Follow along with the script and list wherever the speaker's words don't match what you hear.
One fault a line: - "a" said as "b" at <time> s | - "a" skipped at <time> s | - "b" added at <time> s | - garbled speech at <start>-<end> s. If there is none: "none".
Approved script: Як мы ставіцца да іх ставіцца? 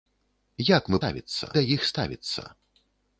none